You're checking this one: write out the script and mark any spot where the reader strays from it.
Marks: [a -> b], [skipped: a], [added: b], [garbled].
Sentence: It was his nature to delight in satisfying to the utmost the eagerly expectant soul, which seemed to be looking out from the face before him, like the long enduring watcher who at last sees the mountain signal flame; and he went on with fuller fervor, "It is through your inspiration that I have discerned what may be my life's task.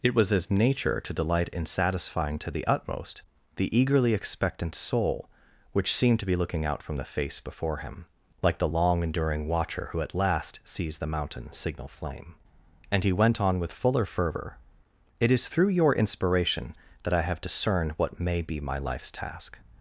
It was his nature to delight in satisfying to the utmost the eagerly expectant soul, which seemed to be looking out from the face before him, like the long enduring watcher who at last sees the mountain signal flame; and he went on with fuller fervor, "It is through your inspiration that I have discerned what may be my life's task.